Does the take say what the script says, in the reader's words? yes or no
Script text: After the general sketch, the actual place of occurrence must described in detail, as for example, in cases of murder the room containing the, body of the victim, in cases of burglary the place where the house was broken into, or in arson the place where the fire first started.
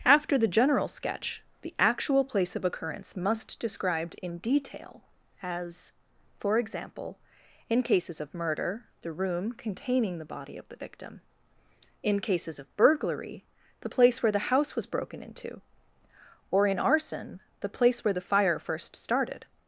yes